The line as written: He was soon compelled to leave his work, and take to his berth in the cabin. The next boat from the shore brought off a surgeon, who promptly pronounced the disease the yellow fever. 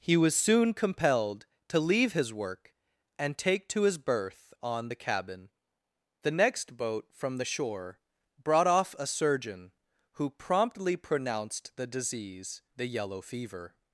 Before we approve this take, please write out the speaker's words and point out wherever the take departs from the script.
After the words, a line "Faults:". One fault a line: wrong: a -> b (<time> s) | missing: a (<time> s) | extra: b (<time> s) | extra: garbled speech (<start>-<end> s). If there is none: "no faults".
He was soon compelled to leave his work, and take to his berth on the cabin. The next boat from the shore brought off a surgeon, who promptly pronounced the disease the yellow fever.
Faults:
wrong: in -> on (4.6 s)